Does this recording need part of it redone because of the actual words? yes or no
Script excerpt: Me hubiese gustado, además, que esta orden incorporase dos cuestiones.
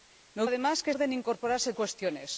yes